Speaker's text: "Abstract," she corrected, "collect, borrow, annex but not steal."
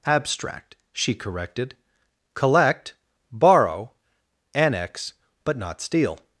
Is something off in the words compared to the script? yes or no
no